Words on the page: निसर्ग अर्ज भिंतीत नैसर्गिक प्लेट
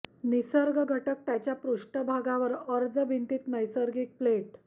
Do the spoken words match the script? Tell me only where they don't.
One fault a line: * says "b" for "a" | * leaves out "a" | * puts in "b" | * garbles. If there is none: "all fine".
* puts in "घटक त्याच्या पृष्ठभागावर"